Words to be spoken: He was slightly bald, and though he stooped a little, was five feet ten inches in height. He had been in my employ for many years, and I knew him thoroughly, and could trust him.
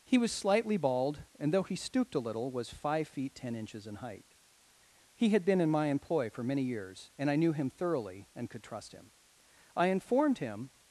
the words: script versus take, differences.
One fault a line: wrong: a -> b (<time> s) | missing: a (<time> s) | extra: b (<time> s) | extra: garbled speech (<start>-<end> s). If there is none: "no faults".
extra: I informed him (9.8 s)